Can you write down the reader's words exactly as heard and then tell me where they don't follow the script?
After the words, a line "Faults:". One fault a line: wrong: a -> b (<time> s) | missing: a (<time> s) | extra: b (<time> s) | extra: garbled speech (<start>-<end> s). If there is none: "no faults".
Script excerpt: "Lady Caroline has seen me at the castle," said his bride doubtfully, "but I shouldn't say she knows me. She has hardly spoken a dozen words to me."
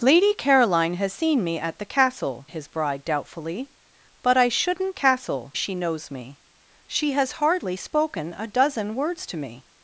"Lady Caroline has seen me at the castle," his bride doubtfully, "but I shouldn't castle she knows me. She has hardly spoken a dozen words to me."
Faults:
missing: said (2.5 s)
wrong: say -> castle (4.9 s)